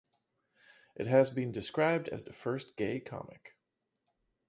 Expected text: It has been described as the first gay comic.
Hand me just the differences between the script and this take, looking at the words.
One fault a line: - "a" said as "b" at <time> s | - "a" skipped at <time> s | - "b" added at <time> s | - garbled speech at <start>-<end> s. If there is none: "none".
none